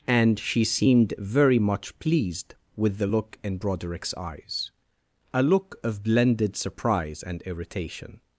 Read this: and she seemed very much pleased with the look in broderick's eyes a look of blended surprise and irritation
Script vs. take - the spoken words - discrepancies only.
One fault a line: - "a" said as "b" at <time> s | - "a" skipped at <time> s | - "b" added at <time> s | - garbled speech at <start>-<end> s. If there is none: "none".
none